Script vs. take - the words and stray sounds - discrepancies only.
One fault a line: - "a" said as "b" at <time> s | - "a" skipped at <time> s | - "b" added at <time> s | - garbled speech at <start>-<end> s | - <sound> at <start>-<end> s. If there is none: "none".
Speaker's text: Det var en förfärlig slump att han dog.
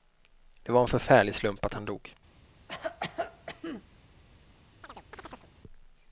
- cough at 2.7-3.8 s
- chirp at 4.8-5.5 s